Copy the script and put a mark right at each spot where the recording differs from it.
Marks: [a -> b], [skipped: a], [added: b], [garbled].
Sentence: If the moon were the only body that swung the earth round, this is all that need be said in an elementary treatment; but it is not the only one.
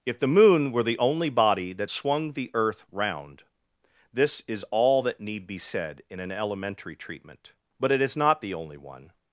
If the moon were the only body that swung the earth round, this is all that need be said in an elementary treatment; but it is not the only one.